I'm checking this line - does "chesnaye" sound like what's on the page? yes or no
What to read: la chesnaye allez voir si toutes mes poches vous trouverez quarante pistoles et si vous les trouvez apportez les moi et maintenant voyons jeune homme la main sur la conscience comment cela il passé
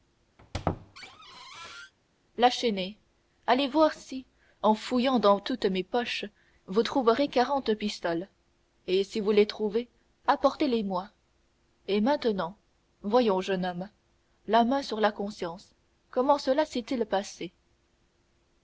yes